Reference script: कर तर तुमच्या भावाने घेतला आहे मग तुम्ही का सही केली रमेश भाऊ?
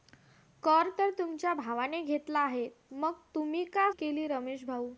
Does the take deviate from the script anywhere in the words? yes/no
yes